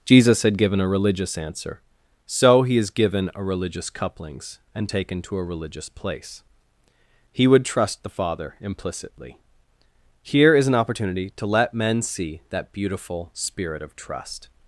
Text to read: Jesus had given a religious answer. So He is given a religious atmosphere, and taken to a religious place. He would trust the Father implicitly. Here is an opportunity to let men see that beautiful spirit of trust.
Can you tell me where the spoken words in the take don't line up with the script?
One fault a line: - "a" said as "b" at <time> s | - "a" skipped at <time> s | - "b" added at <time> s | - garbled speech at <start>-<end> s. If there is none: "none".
- "atmosphere" said as "couplings" at 3.9 s